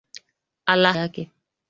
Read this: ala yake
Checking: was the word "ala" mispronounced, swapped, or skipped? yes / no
no